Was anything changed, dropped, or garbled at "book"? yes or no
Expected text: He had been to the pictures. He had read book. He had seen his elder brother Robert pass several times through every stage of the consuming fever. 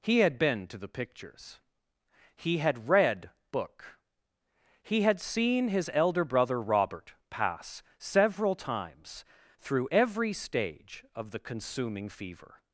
no